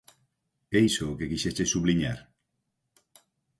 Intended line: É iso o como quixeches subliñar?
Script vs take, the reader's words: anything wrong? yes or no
yes